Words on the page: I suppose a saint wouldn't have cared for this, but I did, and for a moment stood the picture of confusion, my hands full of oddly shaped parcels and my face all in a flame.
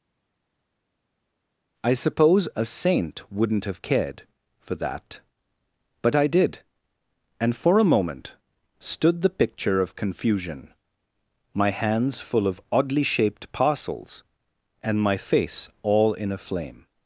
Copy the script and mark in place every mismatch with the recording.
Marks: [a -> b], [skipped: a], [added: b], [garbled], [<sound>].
I suppose a saint wouldn't have cared for [this, -> that] but I did, and for a moment stood the picture of confusion, my hands full of oddly shaped parcels and my face all in a flame.